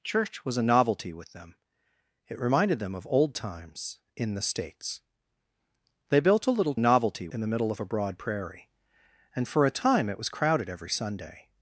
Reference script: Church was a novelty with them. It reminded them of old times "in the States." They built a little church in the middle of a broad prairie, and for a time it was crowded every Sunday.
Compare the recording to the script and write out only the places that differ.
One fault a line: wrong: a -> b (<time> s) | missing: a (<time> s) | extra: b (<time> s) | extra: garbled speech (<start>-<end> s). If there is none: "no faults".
wrong: church -> novelty (6.8 s)